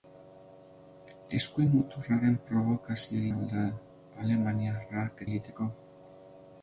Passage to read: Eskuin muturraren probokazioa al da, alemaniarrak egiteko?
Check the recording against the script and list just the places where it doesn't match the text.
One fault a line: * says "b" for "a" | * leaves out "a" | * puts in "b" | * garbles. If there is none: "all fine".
all fine